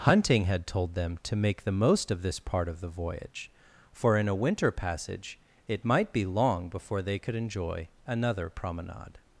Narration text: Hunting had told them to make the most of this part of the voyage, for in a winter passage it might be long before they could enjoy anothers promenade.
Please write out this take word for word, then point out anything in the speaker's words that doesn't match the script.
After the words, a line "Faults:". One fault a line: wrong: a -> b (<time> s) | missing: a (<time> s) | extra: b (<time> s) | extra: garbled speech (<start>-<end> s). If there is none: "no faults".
Hunting had told them to make the most of this part of the voyage, for in a winter passage it might be long before they could enjoy another promenade.
Faults:
wrong: anothers -> another (8.1 s)